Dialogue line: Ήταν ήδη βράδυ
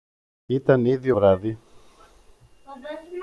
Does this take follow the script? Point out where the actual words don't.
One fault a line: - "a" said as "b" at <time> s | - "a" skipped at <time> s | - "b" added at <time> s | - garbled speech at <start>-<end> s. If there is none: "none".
none